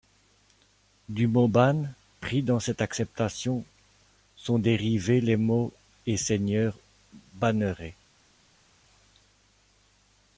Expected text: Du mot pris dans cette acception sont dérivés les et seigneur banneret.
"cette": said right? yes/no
yes